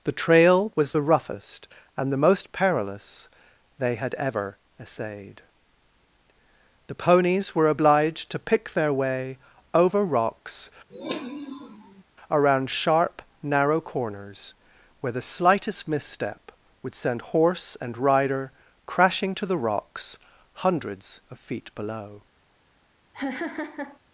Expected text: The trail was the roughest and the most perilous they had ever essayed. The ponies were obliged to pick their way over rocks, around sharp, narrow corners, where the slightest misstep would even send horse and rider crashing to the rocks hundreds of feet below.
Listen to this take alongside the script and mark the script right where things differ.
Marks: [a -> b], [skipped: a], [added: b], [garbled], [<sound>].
The trail was the roughest and the most perilous they had ever essayed. The ponies were obliged to pick their way over rocks, [sniff] around sharp, narrow corners, where the slightest misstep would [skipped: even] send horse and rider crashing to the rocks hundreds of feet below. [laugh]